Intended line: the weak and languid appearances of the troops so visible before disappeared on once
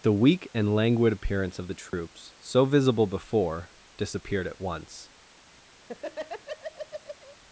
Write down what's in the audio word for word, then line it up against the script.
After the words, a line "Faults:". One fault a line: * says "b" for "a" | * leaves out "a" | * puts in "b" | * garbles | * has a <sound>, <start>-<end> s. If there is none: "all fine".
the weak and languid appearance of the troops so visible before disappeared at once
Faults:
* says "appearance" for "appearances"
* has a dropout, 1.9-1.9 s
* says "at" for "on"
* has a laugh, 5.8-7.4 s